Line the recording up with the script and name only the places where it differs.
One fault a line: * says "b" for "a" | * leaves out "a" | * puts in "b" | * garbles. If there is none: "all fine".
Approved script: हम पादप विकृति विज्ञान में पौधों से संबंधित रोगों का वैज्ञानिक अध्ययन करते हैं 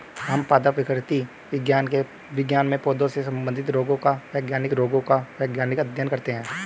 * puts in "रोगों का वैज्ञानिक"